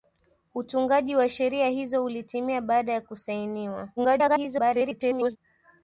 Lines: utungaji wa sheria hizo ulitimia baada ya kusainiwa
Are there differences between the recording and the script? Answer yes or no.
yes